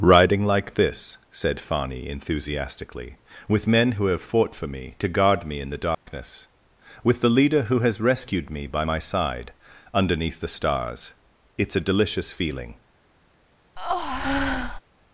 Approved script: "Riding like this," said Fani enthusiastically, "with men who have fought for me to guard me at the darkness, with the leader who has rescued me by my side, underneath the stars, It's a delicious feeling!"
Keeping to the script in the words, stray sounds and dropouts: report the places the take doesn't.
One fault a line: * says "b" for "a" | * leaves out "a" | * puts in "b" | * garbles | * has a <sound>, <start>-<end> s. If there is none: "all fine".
* says "in" for "at"
* has a dropout, 5.9-6.1 s
* has a breath, 13.8-14.8 s